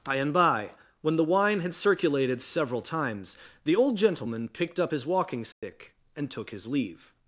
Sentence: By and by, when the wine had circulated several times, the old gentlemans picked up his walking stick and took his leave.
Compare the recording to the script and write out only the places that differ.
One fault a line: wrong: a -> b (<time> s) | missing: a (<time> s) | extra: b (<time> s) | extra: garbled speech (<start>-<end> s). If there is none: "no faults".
wrong: gentlemans -> gentleman (4.0 s)